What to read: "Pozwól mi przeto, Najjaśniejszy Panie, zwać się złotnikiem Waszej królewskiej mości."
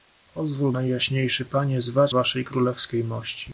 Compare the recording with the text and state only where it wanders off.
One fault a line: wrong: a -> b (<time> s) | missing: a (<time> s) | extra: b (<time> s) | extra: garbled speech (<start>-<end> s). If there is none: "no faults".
missing: mi przeto (0.7 s)
missing: się złotnikiem (2.1 s)